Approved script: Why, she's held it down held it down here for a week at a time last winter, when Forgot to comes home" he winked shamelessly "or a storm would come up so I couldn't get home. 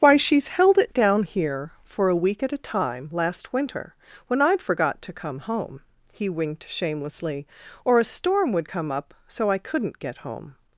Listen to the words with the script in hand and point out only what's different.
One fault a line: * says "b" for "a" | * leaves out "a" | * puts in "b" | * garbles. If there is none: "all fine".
* leaves out "held it down"
* puts in "I'd"
* says "come" for "comes"